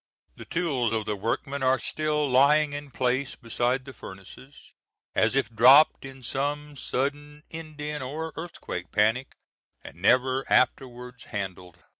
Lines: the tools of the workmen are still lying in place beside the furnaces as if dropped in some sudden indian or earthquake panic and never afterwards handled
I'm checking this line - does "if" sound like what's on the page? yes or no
yes